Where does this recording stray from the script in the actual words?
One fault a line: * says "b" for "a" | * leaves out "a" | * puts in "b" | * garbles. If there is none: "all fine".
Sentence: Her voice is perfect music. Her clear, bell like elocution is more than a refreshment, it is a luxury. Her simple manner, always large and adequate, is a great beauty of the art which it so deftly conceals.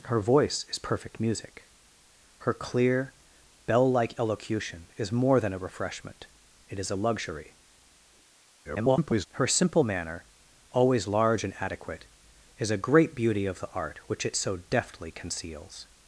* garbles